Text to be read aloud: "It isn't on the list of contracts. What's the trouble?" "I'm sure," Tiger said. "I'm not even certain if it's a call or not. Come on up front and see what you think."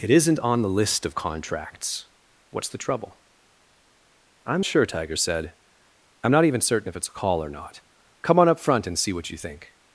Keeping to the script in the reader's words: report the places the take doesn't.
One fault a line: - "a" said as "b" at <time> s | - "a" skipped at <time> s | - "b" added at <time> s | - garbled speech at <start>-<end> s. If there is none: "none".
none